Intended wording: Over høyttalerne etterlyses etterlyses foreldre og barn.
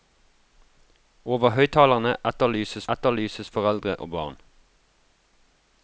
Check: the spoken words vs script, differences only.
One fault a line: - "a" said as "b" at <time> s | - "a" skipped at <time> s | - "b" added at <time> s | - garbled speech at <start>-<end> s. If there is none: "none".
none